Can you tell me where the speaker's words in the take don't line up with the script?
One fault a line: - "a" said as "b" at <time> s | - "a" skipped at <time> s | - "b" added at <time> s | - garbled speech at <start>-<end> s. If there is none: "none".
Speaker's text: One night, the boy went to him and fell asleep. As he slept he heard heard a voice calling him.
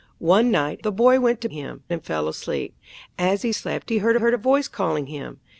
none